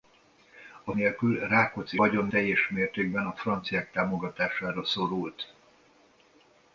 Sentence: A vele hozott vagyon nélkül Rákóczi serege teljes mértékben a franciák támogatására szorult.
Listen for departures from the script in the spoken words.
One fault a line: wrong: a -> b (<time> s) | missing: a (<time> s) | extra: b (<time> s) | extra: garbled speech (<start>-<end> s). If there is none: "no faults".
missing: vele hozott vagyon (0.9 s)
wrong: serege -> vagyon (1.9 s)